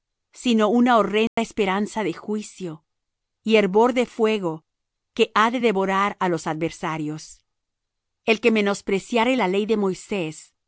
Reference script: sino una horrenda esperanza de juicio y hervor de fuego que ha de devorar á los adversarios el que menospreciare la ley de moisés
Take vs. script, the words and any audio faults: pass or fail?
fail